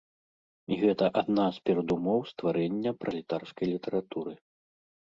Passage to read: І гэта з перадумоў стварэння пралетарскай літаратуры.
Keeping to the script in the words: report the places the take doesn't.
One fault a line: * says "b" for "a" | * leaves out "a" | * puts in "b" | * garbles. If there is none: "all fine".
* puts in "адна"